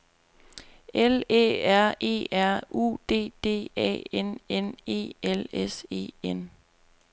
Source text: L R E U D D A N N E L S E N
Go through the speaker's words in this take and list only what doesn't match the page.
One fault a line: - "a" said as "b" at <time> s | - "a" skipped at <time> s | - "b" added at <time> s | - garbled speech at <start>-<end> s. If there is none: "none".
- "Æ" added at 1.3 s
- "R" added at 2.3 s